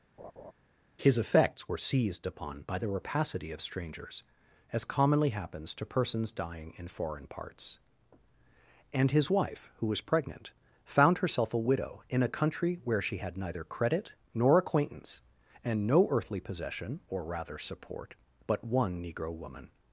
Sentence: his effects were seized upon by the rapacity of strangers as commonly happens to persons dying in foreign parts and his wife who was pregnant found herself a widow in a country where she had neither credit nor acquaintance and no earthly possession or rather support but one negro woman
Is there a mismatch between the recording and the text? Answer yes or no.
no